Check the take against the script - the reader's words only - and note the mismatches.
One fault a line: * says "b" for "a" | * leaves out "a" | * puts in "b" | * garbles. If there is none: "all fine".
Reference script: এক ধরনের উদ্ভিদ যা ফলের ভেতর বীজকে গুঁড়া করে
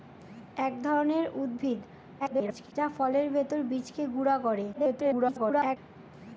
* garbles
* garbles